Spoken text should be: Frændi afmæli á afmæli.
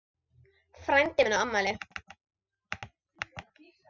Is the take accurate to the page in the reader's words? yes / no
no